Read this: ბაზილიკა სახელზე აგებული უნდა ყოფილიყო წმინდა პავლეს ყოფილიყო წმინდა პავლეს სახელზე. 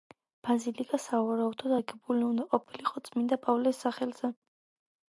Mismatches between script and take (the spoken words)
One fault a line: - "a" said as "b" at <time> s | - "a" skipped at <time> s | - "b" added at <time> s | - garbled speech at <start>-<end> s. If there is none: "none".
- "სახელზე" said as "სავარაუდოდ" at 1.0 s
- "ყოფილიყო წმინდა პავლეს" skipped at 3.9 s